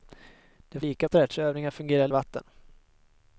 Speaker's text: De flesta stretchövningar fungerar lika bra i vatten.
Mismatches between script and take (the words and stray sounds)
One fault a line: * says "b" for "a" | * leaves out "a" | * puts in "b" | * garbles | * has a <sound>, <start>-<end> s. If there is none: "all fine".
* says "lika" for "flesta"
* leaves out "lika bra"